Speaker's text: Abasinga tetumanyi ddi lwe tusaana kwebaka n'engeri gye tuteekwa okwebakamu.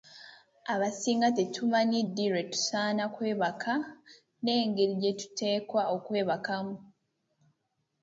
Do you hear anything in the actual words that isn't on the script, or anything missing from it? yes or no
no